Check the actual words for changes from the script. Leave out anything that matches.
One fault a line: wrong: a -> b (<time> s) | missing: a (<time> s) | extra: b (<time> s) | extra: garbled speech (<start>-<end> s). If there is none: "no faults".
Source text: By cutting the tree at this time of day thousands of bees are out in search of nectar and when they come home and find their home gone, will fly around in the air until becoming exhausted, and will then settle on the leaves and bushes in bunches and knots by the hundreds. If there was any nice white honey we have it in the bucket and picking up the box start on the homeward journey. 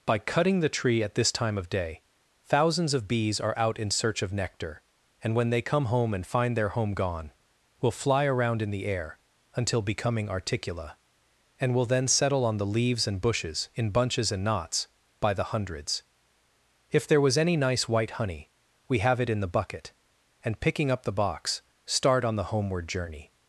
wrong: exhausted -> articula (10.3 s)